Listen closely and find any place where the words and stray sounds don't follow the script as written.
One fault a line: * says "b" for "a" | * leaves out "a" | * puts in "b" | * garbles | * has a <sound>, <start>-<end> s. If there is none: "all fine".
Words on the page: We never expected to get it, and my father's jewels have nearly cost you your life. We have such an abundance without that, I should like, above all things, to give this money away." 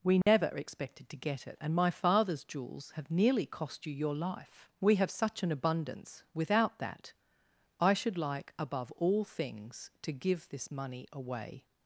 * has a dropout, 0.2-0.3 s